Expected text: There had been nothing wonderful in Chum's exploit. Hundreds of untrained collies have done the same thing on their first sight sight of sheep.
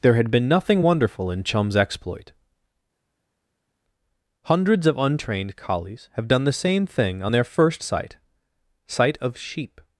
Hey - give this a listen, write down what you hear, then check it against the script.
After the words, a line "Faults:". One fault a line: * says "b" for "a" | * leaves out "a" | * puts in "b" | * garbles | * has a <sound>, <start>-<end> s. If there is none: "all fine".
There had been nothing wonderful in Chum's exploit. Hundreds of untrained collies have done the same thing on their first sight sight of sheep.
Faults:
all fine